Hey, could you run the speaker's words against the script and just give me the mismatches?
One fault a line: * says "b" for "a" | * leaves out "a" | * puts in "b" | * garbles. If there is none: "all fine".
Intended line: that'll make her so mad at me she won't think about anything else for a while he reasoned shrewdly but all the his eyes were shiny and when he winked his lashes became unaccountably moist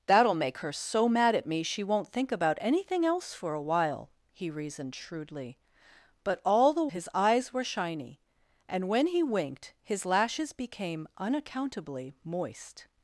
all fine